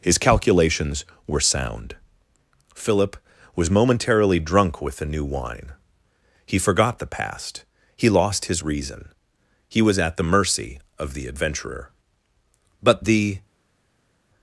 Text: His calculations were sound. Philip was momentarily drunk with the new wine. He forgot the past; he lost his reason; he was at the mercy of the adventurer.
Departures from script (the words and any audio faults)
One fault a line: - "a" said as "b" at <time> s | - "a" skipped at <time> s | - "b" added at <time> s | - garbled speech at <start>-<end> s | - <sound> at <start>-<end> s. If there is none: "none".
- "But the" added at 12.8 s